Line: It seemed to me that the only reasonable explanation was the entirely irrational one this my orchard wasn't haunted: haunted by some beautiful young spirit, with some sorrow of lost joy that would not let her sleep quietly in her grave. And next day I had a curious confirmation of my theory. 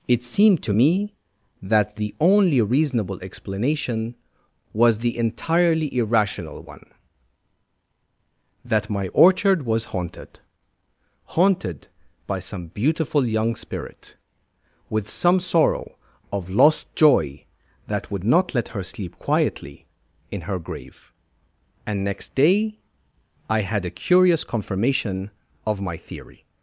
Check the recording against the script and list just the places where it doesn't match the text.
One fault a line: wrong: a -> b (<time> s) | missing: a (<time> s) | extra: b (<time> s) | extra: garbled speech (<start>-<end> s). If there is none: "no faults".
wrong: this -> that (8.6 s)
wrong: wasn't -> was (9.6 s)